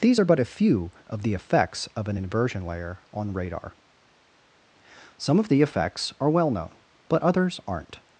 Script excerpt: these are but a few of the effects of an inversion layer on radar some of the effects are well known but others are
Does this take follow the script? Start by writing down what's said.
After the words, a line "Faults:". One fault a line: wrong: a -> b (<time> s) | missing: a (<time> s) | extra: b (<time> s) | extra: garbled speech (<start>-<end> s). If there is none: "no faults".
these are but a few of the effects of an inversion layer on radar some of the effects are well known but others aren't
Faults:
wrong: are -> aren't (7.7 s)